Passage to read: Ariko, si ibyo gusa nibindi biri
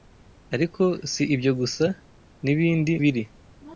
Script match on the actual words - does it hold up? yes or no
yes